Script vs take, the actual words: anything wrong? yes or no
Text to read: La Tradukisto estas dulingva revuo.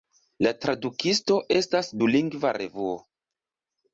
no